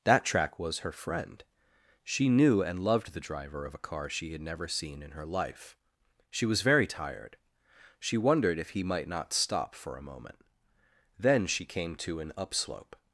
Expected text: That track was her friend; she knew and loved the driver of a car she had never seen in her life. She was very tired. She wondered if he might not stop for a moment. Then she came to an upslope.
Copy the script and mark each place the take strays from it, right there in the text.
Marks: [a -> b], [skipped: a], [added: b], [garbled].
That track was her friend; she knew and loved the driver of a car she had never seen in her life. She was very tired. She wondered if he might not stop for a moment. Then she came to an upslope.